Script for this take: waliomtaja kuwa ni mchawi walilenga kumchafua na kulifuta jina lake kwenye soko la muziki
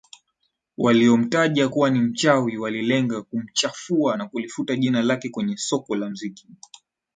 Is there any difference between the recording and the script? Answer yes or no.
no